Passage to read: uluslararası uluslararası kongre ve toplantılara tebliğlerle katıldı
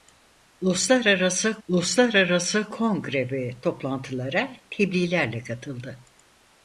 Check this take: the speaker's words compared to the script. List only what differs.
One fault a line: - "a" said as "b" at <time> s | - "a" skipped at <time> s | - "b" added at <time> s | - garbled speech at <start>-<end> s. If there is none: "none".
none